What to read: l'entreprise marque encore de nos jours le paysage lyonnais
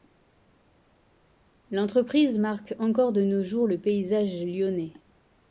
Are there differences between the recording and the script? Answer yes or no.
no